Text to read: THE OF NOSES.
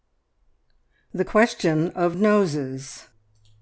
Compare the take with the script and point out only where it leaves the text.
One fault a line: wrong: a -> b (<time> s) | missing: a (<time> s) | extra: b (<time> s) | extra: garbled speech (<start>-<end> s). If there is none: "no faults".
extra: QUESTION (1.2 s)